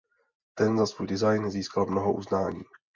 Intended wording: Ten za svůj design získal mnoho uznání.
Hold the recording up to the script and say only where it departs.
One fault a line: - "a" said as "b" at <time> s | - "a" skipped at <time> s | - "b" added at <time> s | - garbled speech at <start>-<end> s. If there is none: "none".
none